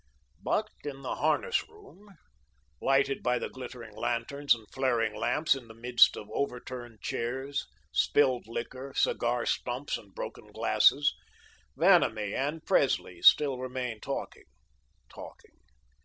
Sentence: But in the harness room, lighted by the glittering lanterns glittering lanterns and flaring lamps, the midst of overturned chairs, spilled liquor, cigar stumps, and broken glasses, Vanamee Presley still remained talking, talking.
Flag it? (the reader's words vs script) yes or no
yes